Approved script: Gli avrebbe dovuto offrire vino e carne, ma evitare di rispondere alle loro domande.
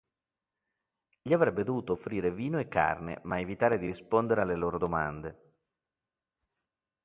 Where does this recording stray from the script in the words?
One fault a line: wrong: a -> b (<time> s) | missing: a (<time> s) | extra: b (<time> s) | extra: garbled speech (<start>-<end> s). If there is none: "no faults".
no faults